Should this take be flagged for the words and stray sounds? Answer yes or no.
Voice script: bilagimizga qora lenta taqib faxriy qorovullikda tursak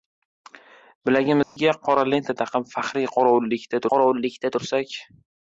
yes